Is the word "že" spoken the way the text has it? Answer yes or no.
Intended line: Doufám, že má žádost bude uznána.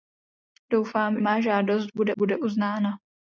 no